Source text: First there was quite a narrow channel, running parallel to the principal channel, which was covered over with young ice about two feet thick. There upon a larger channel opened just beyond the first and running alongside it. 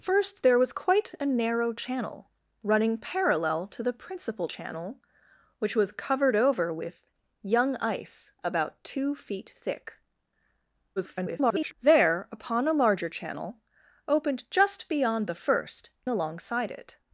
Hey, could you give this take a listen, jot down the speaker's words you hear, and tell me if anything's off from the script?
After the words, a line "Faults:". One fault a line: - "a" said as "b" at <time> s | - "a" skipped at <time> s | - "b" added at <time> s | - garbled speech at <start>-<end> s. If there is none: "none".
First there was quite a narrow channel, running parallel to the principal channel, which was covered over with young ice about two feet thick. [garbled] There upon a larger channel opened just beyond the first alongside it.
Faults:
- garbled speech at 11.0-11.7 s
- "and running" skipped at 15.9 s